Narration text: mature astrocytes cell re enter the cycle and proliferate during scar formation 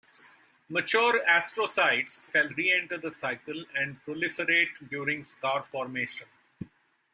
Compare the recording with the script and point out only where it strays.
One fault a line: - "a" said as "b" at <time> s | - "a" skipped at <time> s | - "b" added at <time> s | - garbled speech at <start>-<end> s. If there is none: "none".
none